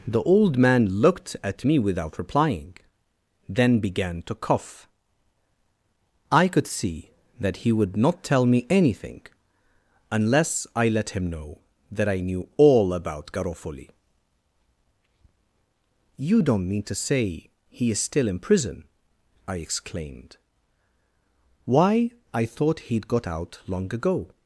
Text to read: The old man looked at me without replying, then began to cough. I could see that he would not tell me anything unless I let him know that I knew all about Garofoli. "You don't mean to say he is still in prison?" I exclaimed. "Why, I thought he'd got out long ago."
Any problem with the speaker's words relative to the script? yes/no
no